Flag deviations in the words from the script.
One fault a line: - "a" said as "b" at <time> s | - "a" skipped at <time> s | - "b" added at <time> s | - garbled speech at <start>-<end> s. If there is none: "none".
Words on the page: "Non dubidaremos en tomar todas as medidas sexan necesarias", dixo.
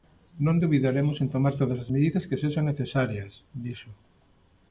- "que" added at 2.3 s